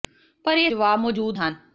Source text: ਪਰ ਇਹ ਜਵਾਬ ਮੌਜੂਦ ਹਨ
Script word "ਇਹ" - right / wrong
right